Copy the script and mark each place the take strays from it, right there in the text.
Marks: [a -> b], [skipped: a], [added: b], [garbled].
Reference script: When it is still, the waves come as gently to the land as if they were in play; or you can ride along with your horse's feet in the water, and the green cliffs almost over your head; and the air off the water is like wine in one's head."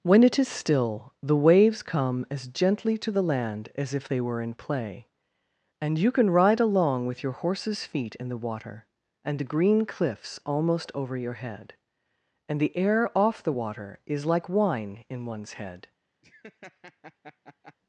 When it is still, the waves come as gently to the land as if they were in play; [or -> and] you can ride along with your horse's feet in the water, and the green cliffs almost over your head; and the air off the water is like wine in one's head."